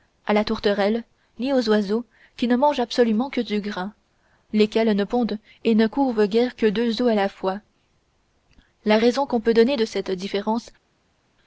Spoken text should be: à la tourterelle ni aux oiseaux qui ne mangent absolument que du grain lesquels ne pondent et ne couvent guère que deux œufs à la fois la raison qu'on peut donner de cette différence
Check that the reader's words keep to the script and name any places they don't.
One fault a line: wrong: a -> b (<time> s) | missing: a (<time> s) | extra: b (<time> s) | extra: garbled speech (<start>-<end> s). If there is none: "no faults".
no faults